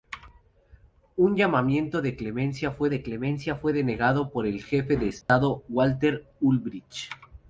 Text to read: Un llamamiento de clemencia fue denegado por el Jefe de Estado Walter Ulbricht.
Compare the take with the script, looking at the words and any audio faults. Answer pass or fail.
fail